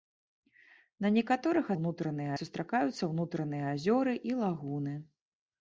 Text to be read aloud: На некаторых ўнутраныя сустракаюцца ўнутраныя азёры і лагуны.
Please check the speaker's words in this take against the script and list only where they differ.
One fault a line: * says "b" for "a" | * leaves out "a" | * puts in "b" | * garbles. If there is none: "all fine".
all fine